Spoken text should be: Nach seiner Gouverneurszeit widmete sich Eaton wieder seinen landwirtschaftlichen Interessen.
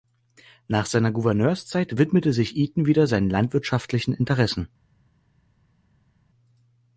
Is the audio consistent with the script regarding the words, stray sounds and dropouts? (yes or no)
yes